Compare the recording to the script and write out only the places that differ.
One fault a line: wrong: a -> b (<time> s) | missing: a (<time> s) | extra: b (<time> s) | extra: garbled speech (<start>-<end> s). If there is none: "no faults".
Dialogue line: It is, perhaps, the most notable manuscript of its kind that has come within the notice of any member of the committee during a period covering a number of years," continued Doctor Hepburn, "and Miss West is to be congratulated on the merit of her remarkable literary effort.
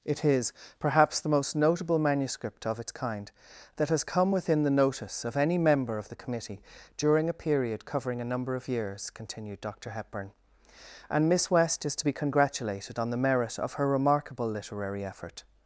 no faults